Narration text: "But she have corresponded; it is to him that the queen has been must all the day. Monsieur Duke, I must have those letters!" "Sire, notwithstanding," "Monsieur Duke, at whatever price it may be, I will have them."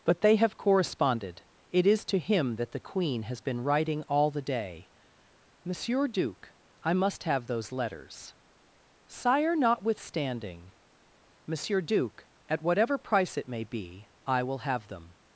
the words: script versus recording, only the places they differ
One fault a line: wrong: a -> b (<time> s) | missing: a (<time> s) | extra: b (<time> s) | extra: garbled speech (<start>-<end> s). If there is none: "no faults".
wrong: she -> they (0.2 s)
wrong: must -> writing (3.6 s)